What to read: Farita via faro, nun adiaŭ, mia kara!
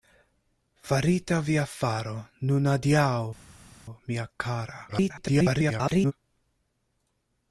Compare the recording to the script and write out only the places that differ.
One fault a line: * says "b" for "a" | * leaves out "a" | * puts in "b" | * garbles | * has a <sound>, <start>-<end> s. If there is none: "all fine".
* garbles